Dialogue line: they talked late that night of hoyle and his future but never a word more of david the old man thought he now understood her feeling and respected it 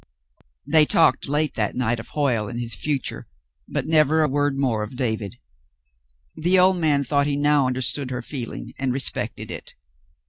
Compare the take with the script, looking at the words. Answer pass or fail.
pass